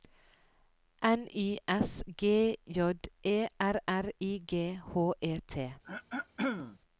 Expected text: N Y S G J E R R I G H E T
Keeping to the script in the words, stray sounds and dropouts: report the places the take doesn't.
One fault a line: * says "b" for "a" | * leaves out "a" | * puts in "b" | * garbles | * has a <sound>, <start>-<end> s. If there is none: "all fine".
* has a throat clearing, 5.8-6.8 s